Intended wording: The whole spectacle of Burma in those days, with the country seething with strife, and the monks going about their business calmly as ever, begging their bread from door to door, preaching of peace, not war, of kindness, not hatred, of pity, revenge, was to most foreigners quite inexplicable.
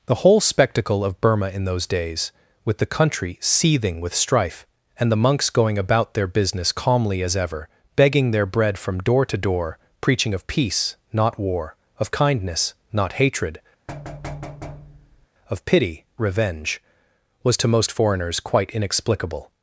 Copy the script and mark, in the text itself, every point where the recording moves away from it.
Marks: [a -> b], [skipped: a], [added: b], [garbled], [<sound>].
The whole spectacle of Burma in those days, with the country seething with strife, and the monks going about their business calmly as ever, begging their bread from door to door, preaching of peace, not war, of kindness, not hatred, [thud] of pity, revenge, was to most foreigners quite inexplicable.